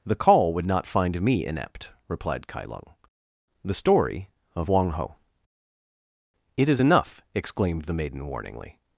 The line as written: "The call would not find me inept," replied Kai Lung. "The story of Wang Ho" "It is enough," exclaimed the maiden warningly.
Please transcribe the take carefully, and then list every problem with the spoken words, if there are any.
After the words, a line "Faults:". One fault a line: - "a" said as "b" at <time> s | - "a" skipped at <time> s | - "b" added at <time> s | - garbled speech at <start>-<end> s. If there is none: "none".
"The call would not find me inept," replied Kai Lung. "The story of Wang Ho" "It is enough," exclaimed the maiden warningly.
Faults:
none